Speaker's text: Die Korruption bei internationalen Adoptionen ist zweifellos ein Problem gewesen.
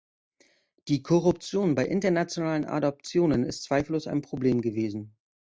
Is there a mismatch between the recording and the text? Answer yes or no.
no